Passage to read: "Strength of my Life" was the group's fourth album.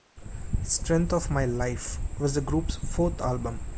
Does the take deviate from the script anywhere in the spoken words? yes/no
no